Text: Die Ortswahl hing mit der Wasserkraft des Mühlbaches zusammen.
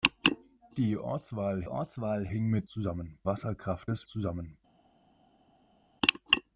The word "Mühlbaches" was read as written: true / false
false